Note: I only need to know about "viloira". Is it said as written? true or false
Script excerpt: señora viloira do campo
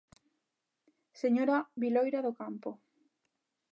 true